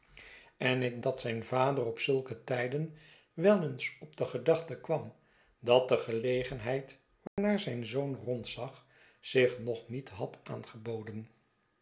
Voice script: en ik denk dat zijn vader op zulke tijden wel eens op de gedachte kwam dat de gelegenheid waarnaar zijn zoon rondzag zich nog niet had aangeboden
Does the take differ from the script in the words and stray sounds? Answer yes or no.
yes